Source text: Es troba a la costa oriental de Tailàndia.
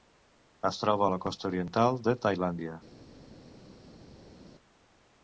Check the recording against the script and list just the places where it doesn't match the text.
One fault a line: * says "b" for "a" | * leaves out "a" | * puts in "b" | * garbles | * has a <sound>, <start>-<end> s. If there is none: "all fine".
all fine